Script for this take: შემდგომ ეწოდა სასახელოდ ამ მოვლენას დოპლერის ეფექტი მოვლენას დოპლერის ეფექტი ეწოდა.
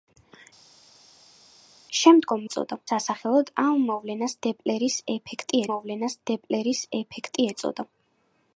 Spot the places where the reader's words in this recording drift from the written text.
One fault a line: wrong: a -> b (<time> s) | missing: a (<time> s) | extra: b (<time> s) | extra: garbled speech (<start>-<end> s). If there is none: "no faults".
no faults